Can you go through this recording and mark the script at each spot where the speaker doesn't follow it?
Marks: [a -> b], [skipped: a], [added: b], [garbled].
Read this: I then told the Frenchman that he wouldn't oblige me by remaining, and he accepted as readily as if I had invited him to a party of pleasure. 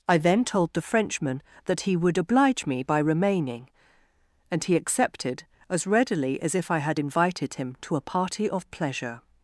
I then told the Frenchman that he [wouldn't -> would] oblige me by remaining, and he accepted as readily as if I had invited him to a party of pleasure.